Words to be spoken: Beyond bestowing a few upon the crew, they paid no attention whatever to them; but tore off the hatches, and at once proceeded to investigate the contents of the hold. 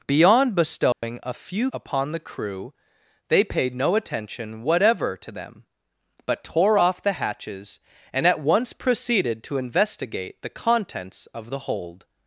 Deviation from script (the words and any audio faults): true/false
true